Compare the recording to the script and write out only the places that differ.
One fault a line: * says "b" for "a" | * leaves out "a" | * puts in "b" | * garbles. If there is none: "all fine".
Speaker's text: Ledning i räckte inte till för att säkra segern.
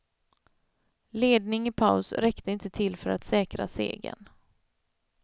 * puts in "paus"